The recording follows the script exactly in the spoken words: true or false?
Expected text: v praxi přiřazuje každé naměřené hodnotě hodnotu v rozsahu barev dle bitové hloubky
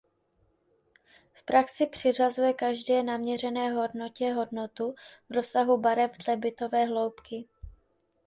true